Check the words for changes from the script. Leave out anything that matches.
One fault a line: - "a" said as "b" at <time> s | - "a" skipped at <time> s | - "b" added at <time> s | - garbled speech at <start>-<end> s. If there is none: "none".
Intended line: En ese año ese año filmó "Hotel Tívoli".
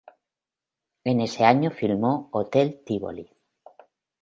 - "ese año" skipped at 1.7 s